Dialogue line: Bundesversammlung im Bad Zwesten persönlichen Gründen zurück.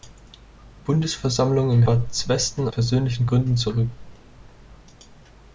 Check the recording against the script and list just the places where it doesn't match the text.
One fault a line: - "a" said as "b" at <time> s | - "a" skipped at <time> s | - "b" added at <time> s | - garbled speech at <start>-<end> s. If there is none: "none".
none